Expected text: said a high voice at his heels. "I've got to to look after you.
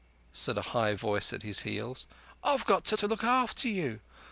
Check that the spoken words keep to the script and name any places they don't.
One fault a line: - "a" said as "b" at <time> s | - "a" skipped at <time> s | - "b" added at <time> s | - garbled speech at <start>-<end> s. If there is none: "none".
none